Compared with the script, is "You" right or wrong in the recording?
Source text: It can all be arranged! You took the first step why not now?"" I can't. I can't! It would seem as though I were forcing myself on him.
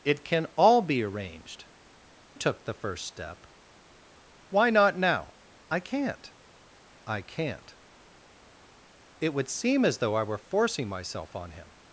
wrong